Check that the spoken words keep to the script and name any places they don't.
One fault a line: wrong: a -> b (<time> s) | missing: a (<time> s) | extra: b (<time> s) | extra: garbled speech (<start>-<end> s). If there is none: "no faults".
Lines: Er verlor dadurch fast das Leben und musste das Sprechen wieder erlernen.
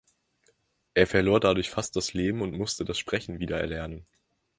no faults